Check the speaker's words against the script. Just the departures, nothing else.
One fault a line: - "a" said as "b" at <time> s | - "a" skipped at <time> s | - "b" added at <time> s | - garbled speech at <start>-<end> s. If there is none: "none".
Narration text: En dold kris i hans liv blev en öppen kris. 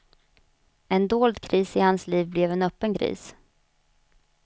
none